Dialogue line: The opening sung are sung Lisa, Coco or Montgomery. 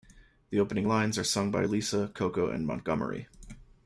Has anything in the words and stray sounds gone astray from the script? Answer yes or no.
yes